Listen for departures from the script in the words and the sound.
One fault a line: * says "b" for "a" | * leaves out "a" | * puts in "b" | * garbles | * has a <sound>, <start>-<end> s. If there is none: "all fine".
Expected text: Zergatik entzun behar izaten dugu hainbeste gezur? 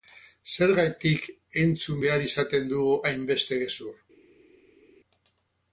all fine